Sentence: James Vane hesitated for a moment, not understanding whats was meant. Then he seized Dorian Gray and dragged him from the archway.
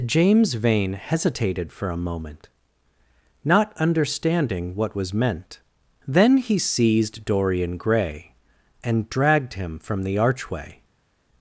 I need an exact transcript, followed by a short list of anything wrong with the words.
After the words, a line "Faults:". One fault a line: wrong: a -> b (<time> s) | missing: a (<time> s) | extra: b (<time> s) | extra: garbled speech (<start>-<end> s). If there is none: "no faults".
James Vane hesitated for a moment, not understanding what was meant. Then he seized Dorian Gray and dragged him from the archway.
Faults:
wrong: whats -> what (4.7 s)